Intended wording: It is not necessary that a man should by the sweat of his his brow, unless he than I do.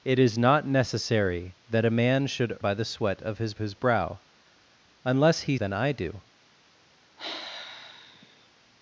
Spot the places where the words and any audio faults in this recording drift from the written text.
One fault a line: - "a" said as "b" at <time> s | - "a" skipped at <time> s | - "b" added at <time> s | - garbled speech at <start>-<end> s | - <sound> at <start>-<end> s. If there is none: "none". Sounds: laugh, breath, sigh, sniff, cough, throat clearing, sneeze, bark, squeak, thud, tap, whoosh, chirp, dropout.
- sigh at 7.2-8.5 s